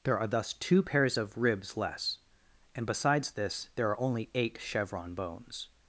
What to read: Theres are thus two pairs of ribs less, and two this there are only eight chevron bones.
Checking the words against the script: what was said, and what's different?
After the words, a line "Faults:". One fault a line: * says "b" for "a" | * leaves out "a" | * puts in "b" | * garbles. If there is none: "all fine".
There are thus two pairs of ribs less, and besides this there are only eight chevron bones.
Faults:
* says "There" for "Theres"
* says "besides" for "two"